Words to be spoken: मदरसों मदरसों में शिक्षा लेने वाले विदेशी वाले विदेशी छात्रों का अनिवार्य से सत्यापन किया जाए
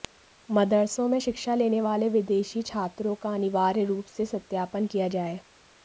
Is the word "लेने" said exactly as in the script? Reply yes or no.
yes